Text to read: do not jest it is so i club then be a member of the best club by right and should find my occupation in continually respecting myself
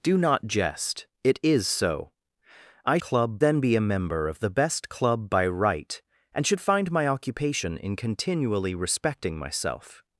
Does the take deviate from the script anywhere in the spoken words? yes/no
no